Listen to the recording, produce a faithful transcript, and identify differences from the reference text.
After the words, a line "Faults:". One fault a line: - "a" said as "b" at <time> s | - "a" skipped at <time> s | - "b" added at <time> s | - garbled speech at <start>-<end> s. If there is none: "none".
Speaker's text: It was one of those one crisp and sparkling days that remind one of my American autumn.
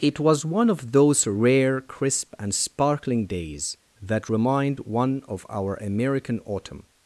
It was one of those rare crisp and sparkling days that remind one of our American autumn.
Faults:
- "one" said as "rare" at 1.3 s
- "my" said as "our" at 5.5 s